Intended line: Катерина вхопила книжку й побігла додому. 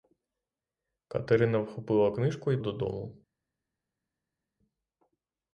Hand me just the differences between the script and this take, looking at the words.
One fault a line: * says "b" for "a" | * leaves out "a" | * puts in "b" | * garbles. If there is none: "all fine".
* leaves out "побігла"